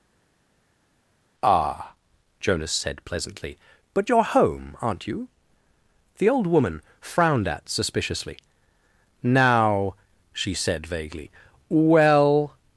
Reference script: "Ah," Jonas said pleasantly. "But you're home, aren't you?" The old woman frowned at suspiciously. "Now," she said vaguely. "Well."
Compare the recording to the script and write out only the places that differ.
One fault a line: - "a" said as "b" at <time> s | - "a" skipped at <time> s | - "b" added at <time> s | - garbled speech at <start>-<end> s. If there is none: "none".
none